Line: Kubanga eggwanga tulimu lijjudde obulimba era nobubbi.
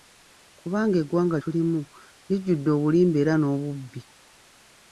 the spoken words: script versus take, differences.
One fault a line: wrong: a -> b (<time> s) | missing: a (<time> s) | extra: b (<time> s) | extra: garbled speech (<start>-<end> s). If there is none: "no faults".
no faults